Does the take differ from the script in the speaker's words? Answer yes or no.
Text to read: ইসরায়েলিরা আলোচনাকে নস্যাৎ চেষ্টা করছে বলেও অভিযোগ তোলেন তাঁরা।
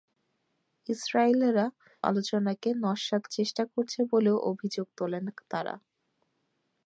no